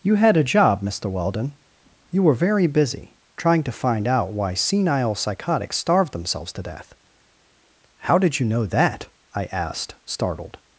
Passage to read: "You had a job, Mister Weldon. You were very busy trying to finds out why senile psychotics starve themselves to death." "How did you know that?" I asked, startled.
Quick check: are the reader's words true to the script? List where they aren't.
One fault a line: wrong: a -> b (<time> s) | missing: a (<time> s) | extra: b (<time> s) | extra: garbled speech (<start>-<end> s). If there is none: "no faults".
wrong: finds -> find (3.7 s)